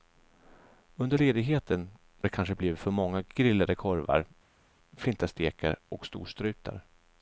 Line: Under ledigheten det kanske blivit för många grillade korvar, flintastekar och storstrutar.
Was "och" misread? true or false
false